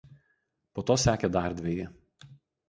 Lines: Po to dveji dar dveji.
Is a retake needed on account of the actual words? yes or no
yes